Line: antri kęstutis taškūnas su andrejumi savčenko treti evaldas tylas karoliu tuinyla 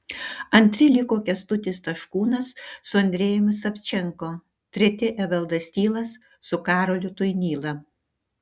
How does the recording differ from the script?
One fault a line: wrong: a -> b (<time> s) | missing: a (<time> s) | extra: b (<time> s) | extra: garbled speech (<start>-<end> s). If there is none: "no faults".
extra: liko (0.9 s)
extra: su (6.5 s)